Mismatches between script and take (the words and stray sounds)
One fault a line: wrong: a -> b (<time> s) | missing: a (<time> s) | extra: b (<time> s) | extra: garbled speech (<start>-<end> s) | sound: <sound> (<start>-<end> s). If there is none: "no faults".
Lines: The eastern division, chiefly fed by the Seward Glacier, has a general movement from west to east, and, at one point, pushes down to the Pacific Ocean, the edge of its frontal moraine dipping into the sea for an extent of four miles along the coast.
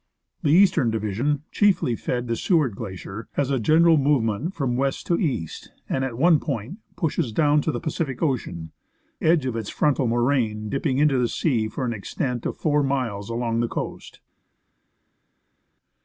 missing: by (2.3 s)
missing: the (8.7 s)